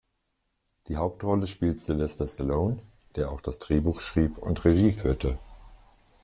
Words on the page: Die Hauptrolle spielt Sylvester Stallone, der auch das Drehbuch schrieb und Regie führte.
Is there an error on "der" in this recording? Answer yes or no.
no